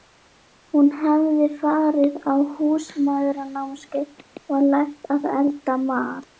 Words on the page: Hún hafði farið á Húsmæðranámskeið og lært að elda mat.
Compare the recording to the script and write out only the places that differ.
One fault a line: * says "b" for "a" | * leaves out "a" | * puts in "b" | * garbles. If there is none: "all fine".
all fine